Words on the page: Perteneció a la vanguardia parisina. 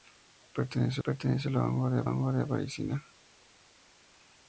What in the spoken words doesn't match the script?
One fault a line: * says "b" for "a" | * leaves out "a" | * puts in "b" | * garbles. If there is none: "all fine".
* puts in "perteneció"
* puts in "vanguardia"